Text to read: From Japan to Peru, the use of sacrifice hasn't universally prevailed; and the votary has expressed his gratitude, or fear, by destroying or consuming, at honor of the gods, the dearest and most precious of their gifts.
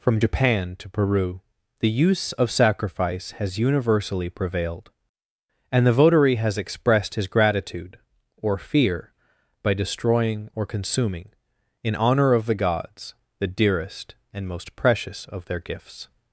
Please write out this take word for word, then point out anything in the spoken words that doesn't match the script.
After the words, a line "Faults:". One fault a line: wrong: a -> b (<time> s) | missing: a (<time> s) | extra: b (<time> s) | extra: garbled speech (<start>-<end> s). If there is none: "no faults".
From Japan to Peru, the use of sacrifice has universally prevailed; and the votary has expressed his gratitude, or fear, by destroying or consuming, in honor of the gods, the dearest and most precious of their gifts.
Faults:
wrong: hasn't -> has (3.3 s)
wrong: at -> in (11.8 s)